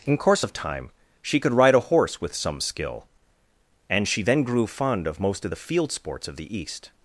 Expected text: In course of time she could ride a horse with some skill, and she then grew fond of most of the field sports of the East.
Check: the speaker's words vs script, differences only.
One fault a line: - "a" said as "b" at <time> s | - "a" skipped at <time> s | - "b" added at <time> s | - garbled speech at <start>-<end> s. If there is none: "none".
none